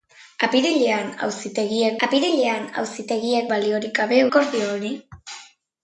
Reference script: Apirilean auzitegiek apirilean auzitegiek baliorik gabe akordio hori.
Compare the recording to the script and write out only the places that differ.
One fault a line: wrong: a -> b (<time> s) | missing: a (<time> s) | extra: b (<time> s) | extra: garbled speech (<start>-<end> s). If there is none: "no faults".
no faults